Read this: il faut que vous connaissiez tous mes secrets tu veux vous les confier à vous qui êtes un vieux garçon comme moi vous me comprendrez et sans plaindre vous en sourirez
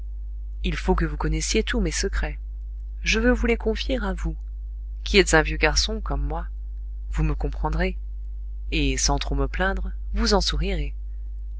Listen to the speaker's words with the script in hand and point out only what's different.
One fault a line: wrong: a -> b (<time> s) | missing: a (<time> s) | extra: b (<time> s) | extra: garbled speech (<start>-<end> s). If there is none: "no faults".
wrong: tu -> je (3.0 s)
extra: trop me (9.2 s)